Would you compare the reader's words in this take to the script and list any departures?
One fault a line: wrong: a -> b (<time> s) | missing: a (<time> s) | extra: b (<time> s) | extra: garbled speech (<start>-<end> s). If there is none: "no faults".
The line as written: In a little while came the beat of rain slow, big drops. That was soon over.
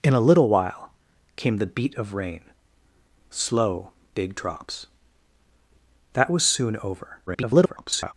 extra: garbled speech (7.3-8.1 s)